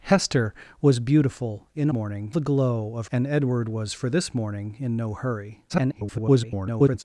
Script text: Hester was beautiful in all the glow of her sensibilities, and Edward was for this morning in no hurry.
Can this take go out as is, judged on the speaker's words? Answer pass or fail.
fail